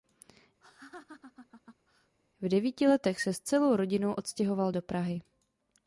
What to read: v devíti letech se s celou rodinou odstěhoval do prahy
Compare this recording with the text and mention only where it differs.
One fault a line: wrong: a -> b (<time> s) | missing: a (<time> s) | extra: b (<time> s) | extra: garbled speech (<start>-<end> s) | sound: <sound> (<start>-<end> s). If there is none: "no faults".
sound: laugh (0.6-2.2 s)